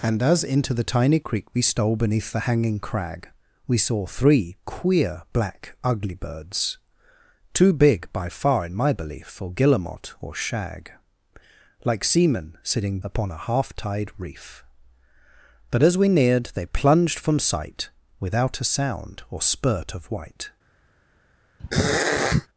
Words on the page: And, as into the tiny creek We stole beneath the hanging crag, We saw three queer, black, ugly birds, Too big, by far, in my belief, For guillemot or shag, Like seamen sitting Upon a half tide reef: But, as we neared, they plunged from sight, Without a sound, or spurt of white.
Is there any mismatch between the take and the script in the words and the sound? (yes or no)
yes